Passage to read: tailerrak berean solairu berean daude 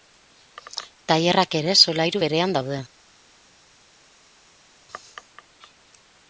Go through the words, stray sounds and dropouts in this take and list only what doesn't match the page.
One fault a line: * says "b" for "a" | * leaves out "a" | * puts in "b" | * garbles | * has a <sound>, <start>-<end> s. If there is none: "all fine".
* says "ere" for "berean"